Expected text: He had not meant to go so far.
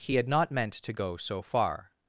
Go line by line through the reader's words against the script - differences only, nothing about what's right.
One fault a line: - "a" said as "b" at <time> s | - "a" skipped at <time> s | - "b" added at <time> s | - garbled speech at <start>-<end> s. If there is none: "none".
none